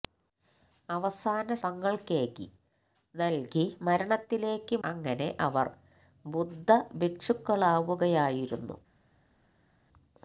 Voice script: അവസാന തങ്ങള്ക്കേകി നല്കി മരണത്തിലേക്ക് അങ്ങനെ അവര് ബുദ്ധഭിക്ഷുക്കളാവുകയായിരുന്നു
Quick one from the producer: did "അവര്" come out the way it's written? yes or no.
yes